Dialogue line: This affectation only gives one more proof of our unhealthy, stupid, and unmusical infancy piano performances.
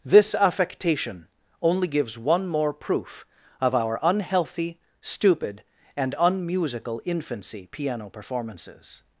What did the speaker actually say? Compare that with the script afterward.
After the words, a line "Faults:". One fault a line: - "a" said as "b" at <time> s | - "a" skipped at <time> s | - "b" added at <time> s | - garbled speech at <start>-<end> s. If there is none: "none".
This affectation only gives one more proof of our unhealthy, stupid, and unmusical infancy piano performances.
Faults:
none